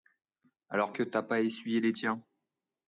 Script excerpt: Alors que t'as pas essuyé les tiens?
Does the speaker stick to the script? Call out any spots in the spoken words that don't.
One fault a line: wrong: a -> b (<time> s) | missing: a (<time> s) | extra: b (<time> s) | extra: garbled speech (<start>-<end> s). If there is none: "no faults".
no faults